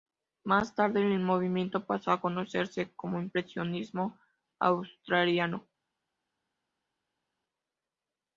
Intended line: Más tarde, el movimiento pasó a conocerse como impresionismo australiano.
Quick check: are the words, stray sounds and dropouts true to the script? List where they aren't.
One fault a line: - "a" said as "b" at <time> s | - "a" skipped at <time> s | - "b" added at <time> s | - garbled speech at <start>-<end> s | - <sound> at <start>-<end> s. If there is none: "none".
none